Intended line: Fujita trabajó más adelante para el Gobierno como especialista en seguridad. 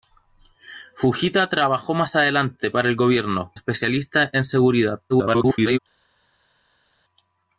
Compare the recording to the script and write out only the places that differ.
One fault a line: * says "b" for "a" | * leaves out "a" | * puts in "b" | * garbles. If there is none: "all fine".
* leaves out "como"
* garbles